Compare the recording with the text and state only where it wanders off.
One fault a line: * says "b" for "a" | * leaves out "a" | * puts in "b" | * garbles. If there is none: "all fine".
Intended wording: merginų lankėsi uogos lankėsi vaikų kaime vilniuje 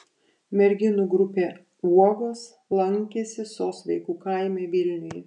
* says "grupė" for "lankėsi"
* puts in "sos"